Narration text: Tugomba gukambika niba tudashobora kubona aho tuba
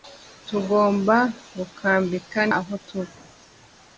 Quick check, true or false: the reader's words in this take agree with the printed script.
false